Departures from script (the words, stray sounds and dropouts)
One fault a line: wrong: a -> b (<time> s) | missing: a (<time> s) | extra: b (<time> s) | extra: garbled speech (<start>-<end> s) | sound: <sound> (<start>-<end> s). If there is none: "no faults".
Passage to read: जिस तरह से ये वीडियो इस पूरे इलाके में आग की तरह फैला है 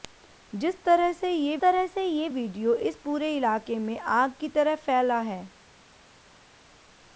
extra: तरह से ये (1.6 s)